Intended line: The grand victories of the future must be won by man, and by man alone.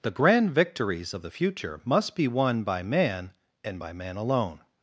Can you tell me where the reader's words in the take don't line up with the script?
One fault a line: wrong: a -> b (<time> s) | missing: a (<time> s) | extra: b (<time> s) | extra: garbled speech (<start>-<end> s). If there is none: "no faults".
no faults